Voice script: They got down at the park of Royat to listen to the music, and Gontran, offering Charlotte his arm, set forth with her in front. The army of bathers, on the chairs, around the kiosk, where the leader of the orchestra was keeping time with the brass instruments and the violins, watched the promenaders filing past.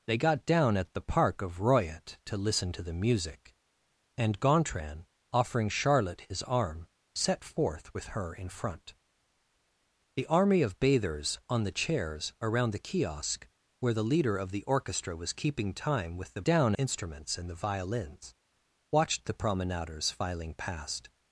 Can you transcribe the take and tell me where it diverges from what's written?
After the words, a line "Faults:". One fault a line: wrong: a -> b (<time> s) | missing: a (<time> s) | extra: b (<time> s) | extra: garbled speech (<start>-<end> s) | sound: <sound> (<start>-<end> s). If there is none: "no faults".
They got down at the park of Royat to listen to the music, and Gontran, offering Charlotte his arm, set forth with her in front. The army of bathers, on the chairs, around the kiosk, where the leader of the orchestra was keeping time with the down instruments and the violins, watched the promenaders filing past.
Faults:
wrong: brass -> down (16.4 s)